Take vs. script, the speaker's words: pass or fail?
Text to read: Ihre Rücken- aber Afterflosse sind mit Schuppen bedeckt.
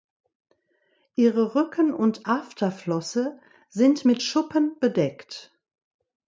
fail